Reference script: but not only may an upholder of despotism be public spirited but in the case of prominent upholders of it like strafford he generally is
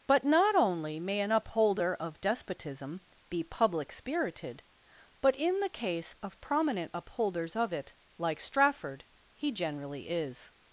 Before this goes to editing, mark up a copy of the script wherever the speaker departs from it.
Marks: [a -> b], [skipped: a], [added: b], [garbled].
but not only may an upholder of despotism be public spirited but in the case of prominent upholders of it like strafford he generally is